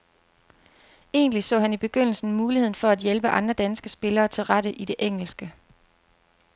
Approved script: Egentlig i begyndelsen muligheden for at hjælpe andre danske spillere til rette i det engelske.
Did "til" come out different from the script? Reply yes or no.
no